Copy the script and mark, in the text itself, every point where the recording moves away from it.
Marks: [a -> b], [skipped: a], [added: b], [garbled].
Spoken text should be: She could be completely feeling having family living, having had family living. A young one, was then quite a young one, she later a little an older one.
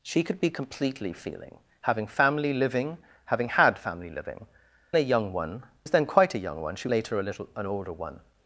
She could be completely feeling having family living, having had family living. A young one, was then quite a young one, she later a little an older one.